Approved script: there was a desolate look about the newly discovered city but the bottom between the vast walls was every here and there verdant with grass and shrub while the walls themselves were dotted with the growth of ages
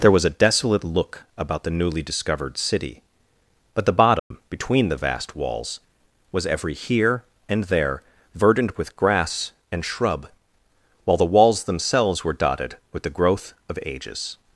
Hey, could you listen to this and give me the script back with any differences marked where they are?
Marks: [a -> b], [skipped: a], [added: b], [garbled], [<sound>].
there was a desolate look about the newly discovered city but the bottom [dropout] between the vast walls was every here and there verdant with grass and shrub while the walls themselves were dotted with the growth of ages